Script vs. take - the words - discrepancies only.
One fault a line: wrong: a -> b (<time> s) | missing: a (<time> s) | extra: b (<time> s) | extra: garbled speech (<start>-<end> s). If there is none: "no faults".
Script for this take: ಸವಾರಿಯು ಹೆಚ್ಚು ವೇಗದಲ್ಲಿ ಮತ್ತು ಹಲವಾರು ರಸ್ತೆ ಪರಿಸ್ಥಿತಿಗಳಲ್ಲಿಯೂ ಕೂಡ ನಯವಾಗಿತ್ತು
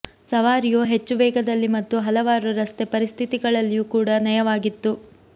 no faults